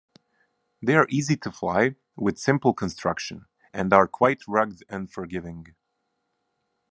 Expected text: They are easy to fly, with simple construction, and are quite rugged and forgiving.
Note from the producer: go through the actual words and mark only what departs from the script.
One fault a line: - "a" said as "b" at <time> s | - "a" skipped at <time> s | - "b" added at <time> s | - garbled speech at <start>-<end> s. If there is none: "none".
none